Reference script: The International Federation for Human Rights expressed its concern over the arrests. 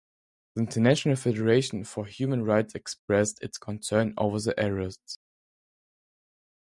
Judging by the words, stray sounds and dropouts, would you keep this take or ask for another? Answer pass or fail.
pass